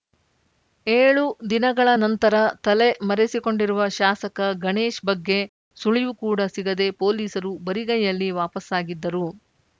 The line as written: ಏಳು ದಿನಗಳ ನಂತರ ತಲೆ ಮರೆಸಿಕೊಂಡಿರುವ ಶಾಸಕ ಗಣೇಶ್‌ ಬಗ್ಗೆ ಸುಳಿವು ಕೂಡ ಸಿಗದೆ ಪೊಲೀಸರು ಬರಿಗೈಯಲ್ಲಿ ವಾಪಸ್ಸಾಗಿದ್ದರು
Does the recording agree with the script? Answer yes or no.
yes